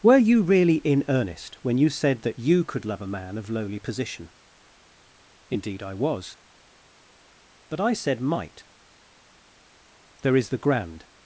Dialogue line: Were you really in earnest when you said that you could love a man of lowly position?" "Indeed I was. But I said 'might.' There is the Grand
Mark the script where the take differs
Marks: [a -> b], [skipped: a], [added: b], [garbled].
Were you really in earnest when you said that you could love a man of lowly position?" "Indeed I was. But I said 'might.' There is the Grand